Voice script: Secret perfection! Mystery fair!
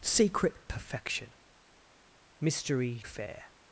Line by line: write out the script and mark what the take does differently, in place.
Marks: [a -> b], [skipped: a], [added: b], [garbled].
Secret perfection! Mystery fair!